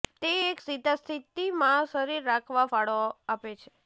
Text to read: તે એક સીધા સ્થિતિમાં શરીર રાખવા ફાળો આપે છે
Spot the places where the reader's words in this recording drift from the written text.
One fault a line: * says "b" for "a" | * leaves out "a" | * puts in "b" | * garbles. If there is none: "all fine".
all fine